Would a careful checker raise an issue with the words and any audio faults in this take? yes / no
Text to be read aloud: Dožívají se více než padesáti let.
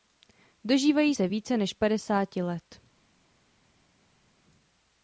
no